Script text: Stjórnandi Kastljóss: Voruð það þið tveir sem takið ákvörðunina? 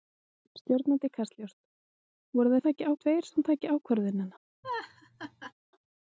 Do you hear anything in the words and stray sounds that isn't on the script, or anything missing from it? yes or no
yes